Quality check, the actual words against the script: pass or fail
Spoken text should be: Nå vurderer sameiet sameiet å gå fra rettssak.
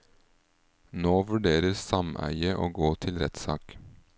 fail